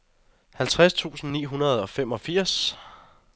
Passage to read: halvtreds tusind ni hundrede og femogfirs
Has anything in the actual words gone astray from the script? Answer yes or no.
no